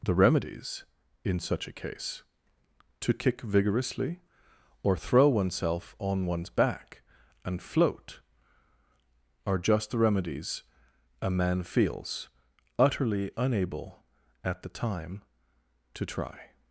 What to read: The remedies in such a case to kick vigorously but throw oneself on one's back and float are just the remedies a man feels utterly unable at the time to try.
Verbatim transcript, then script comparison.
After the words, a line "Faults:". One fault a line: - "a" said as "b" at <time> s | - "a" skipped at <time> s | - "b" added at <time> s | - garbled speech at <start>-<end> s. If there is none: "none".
The remedies in such a case to kick vigorously or throw oneself on one's back and float are just the remedies a man feels utterly unable at the time to try.
Faults:
- "but" said as "or" at 4.8 s